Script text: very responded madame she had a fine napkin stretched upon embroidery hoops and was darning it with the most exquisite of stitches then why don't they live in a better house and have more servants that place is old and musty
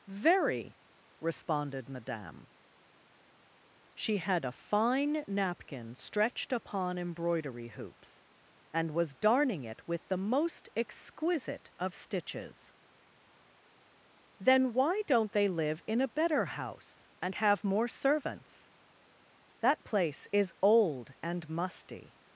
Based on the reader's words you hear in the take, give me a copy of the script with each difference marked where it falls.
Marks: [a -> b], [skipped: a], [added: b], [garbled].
very responded madame she had a fine napkin stretched upon embroidery hoops and was darning it with the most exquisite of stitches then why don't they live in a better house and have more servants that place is old and musty